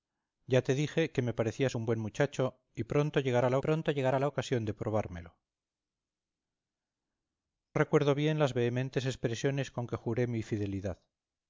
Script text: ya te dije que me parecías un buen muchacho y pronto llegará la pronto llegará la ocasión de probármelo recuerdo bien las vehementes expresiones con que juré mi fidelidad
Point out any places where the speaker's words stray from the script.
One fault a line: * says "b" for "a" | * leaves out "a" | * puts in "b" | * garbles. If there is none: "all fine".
all fine